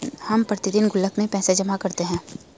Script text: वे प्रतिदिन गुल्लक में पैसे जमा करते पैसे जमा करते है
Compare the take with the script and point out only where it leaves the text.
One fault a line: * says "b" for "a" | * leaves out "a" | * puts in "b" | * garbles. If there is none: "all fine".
* says "हम" for "वे"
* leaves out "पैसे जमा करते"